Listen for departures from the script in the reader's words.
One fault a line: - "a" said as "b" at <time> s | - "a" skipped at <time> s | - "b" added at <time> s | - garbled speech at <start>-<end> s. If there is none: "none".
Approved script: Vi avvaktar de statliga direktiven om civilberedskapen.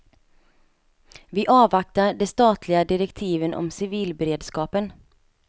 none